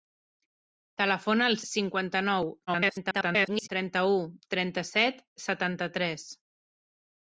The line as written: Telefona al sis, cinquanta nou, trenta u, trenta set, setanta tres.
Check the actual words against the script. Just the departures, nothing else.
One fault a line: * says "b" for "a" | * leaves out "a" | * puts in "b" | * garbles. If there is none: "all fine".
* leaves out "sis"
* garbles